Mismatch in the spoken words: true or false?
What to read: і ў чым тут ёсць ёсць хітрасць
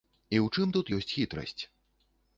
true